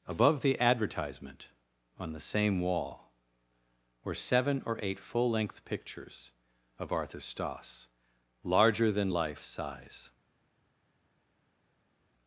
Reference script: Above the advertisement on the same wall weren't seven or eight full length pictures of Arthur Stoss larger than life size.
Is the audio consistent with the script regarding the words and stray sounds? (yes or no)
no